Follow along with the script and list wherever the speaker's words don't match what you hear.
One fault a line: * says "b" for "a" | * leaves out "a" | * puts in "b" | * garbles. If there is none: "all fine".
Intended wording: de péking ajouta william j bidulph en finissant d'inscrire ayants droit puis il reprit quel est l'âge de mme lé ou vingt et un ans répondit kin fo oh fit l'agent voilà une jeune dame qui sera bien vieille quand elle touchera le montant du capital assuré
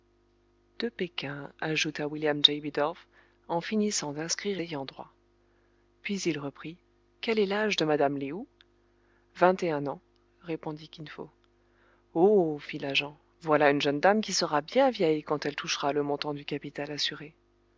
all fine